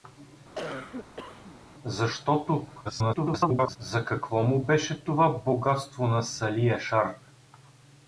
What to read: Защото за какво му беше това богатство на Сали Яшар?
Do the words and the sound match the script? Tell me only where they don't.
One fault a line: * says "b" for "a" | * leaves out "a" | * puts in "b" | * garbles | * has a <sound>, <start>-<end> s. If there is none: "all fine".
* has a cough, 0.5-1.6 s
* garbles